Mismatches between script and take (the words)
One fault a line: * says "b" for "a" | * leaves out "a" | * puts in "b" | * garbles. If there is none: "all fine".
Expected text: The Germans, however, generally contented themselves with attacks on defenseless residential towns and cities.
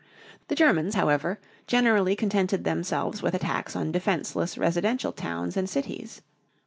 all fine